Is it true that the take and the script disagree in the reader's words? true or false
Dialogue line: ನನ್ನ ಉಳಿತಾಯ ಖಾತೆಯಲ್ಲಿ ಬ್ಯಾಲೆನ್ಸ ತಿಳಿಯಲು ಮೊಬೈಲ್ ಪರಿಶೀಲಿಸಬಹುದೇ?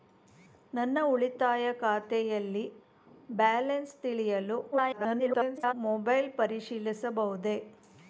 true